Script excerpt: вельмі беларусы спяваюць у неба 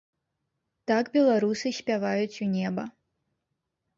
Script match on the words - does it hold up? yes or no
no